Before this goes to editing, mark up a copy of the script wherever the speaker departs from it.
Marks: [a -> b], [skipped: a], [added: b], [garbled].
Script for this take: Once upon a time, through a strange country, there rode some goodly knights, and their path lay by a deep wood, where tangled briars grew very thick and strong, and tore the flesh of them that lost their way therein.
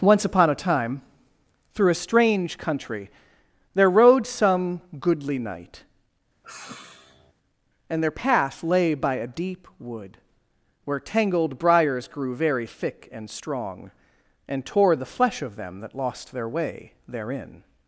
Once upon a time, through a strange country, there rode some goodly [knights, -> knight] and their path lay by a deep wood, where tangled briars grew very thick and strong, and tore the flesh of them that lost their way therein.